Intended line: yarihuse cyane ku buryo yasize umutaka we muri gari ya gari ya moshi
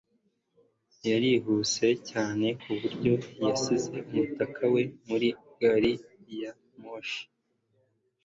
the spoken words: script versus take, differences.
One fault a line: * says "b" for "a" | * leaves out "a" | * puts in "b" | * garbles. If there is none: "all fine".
* leaves out "gari ya"